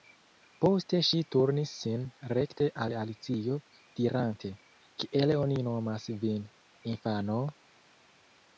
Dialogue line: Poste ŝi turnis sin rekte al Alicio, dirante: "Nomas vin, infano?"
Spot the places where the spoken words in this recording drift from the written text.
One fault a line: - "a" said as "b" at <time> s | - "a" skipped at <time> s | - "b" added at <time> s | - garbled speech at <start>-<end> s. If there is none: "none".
- "Kiel oni" added at 5.0 s